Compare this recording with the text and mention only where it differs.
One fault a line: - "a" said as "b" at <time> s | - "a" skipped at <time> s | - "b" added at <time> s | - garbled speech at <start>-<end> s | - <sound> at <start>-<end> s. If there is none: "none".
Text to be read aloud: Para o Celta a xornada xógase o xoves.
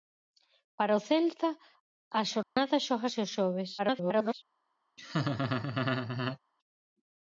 - dropout at 2.4-2.6 s
- garbled speech at 3.8-4.3 s
- laugh at 5.0-6.4 s